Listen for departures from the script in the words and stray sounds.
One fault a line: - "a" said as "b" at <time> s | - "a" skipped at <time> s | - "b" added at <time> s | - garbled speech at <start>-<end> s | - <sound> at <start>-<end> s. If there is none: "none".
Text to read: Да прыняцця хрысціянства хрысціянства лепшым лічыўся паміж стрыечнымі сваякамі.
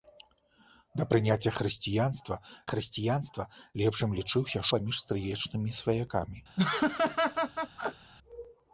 - laugh at 6.6-8.1 s